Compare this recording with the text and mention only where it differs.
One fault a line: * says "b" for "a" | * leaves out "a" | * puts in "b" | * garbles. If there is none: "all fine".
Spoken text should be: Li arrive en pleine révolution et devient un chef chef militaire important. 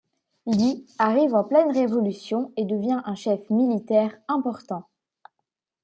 * leaves out "chef"